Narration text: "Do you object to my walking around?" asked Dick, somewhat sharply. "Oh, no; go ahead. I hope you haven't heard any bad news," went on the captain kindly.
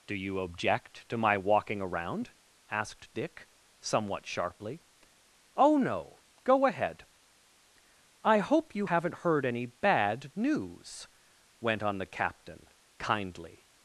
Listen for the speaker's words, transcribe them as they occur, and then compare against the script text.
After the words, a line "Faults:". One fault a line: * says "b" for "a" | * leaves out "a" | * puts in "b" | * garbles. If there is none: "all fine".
"Do you object to my walking around?" asked Dick, somewhat sharply. "Oh, no; go ahead. I hope you haven't heard any bad news," went on the captain kindly.
Faults:
all fine